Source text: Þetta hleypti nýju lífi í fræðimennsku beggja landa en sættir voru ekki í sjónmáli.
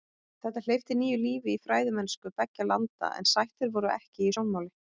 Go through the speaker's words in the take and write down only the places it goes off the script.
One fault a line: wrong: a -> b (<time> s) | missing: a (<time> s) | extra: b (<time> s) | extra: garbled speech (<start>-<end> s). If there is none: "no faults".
no faults